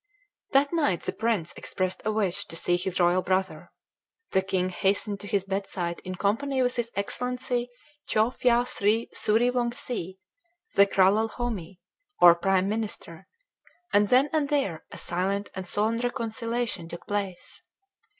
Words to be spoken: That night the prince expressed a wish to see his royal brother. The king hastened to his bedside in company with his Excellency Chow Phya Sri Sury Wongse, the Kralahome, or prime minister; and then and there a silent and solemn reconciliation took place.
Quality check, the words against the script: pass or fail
pass